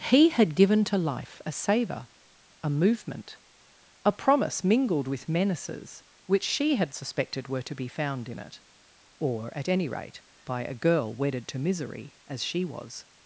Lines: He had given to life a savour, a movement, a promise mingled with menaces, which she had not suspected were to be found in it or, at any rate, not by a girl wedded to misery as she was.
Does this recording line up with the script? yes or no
no